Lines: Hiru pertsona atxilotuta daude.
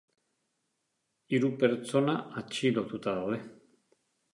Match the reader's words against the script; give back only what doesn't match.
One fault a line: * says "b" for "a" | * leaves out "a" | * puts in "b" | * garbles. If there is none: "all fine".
all fine